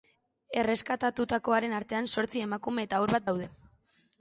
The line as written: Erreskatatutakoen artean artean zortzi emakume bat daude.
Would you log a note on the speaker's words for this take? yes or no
yes